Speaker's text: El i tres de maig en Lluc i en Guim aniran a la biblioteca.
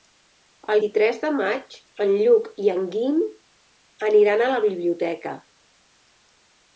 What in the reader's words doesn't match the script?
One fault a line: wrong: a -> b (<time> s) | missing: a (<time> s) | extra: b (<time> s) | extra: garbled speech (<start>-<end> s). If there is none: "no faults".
no faults